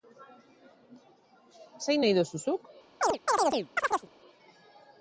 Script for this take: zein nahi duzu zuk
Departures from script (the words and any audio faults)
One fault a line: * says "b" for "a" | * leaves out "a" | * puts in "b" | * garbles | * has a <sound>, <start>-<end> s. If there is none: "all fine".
* has a chirp, 3.0-4.1 s